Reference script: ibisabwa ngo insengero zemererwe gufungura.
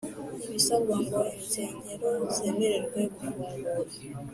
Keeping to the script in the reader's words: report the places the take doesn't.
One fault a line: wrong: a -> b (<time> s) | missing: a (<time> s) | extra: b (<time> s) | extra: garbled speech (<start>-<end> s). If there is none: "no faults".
no faults